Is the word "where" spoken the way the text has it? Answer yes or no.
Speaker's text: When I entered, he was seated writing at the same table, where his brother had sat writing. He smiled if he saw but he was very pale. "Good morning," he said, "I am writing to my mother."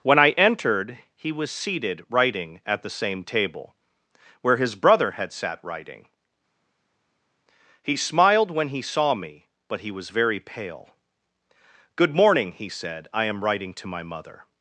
yes